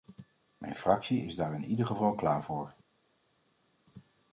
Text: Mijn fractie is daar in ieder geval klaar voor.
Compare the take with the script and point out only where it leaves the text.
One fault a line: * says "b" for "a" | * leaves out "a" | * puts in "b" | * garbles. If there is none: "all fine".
all fine